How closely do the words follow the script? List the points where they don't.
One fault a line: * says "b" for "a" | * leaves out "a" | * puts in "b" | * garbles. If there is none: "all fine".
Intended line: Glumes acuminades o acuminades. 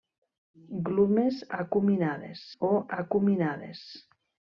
all fine